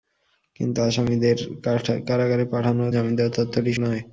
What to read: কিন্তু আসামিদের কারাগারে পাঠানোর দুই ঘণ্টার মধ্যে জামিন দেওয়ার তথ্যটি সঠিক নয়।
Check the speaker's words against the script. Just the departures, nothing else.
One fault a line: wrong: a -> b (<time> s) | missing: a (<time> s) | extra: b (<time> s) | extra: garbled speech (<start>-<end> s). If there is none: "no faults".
missing: দুই ঘণ্টার মধ্যে (2.9 s)
missing: সঠিক (3.7 s)